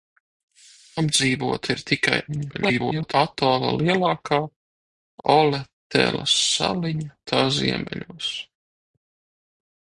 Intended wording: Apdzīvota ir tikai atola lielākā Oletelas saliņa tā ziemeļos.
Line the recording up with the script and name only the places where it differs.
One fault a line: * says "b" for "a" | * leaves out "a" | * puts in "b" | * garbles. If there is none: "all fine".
* garbles